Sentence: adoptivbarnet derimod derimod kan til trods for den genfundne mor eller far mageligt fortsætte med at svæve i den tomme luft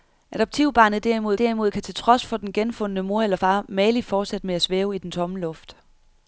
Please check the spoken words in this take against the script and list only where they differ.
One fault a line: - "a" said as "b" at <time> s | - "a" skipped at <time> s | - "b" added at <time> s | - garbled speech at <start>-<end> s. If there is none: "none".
none